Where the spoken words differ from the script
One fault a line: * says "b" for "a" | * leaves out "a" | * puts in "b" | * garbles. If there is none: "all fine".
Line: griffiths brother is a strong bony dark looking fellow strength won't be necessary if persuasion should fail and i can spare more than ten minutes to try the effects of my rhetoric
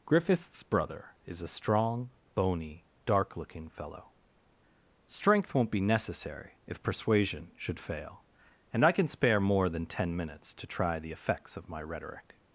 all fine